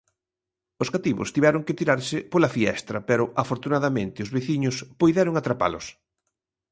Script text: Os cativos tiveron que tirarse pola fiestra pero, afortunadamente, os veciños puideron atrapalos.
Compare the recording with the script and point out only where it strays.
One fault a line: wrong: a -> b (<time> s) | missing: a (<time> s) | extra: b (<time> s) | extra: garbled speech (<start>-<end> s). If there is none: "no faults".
no faults